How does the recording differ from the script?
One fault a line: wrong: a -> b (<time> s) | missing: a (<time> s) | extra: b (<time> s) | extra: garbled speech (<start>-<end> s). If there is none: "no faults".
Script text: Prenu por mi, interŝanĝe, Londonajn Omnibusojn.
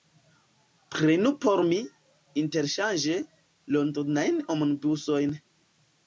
no faults